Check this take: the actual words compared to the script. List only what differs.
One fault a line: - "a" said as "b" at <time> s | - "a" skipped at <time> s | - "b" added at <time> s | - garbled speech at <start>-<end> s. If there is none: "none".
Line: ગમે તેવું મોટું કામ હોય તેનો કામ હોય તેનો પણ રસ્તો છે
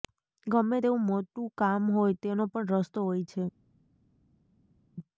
- "કામ હોય તેનો" skipped at 2.4 s
- "હોય" added at 3.0 s